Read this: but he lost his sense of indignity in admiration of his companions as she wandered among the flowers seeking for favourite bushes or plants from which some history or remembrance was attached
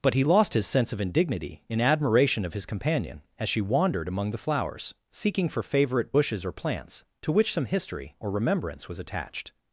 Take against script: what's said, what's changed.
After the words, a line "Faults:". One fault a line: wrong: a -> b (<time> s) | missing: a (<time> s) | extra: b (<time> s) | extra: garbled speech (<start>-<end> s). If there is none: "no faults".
but he lost his sense of indignity in admiration of his companion as she wandered among the flowers seeking for favourite bushes or plants to which some history or remembrance was attached
Faults:
wrong: companions -> companion (2.6 s)
wrong: from -> to (7.2 s)